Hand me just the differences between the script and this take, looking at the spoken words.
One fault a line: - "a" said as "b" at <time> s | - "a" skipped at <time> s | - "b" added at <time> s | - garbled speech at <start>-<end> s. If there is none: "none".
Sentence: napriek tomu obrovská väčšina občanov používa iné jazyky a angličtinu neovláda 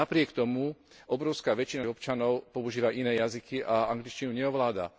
none